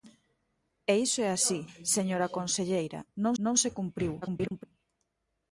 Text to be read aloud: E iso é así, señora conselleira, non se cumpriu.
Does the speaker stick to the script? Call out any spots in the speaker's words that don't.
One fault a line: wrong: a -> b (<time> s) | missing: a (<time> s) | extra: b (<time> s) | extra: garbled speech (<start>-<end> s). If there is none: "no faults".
extra: non (3.4 s)
extra: garbled speech (4.2-4.7 s)